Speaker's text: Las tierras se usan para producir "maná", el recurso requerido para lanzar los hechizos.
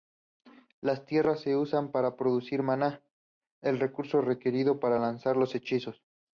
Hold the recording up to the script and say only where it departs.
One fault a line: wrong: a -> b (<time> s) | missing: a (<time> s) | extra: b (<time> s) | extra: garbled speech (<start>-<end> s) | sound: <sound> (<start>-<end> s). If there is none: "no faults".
no faults